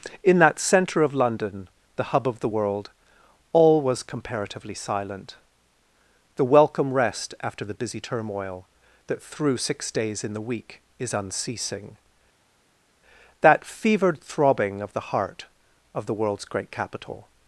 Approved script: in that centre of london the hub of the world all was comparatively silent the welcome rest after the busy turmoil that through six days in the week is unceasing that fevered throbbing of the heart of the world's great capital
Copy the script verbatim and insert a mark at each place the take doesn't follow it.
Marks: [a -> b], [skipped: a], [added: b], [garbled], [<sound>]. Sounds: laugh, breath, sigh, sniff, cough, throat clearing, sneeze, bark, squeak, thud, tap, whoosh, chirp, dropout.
in that centre of london the hub of the world all was comparatively silent the welcome rest after the busy turmoil that through six days in the week is unceasing that fevered throbbing of the heart of the world's great capital